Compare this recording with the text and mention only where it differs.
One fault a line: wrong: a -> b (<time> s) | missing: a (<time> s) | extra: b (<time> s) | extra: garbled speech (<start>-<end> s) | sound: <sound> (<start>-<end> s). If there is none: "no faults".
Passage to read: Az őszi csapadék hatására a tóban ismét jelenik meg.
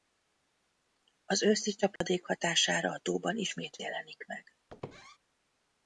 sound: dropout (2.0-2.0 s)
sound: squeak (4.7-5.2 s)